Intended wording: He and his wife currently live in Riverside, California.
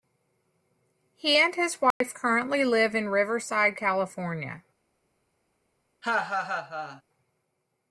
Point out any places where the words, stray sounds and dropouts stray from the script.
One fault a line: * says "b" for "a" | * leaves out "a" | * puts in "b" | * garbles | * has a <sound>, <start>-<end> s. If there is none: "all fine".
* has a dropout, 1.9-2.0 s
* has a laugh, 6.0-7.0 s